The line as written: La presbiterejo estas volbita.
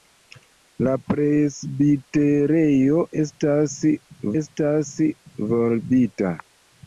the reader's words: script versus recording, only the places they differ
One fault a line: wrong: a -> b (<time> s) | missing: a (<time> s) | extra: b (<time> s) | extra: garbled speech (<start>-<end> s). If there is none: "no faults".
extra: estas (4.4 s)